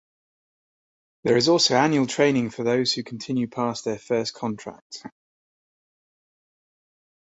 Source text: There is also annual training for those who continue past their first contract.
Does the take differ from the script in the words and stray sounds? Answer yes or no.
no